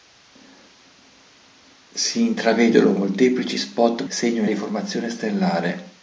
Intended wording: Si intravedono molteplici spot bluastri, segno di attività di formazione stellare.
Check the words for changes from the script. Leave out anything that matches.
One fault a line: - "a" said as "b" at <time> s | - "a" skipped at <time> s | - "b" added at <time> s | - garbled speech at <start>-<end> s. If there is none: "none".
- "bluastri" skipped at 4.0 s
- "attività" skipped at 4.5 s